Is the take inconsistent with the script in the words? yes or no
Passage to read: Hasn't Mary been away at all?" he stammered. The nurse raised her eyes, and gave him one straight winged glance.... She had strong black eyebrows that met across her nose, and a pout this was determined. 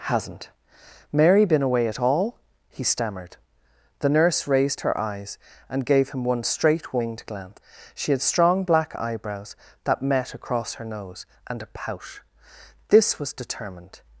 no